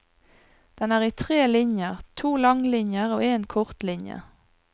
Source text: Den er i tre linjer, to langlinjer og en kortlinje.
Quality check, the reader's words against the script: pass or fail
pass